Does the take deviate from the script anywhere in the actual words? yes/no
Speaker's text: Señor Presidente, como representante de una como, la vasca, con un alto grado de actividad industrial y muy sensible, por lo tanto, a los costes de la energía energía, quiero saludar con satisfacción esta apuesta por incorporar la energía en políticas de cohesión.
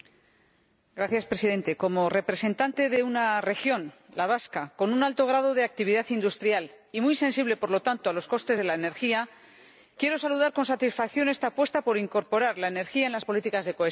yes